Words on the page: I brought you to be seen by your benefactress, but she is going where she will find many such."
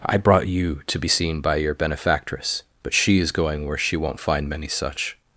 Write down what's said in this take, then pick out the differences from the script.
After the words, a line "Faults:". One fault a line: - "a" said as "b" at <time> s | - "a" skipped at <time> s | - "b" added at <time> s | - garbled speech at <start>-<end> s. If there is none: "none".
I brought you to be seen by your benefactress, but she is going where she won't find many such."
Faults:
- "will" said as "won't" at 4.0 s